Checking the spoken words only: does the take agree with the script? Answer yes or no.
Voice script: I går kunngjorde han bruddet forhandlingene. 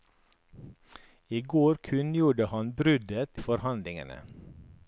yes